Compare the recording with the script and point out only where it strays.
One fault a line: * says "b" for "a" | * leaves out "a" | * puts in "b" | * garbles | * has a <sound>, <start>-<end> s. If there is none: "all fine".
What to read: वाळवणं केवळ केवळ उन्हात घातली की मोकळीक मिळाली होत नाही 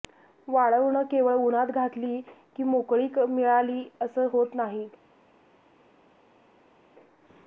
* leaves out "केवळ"
* puts in "असं"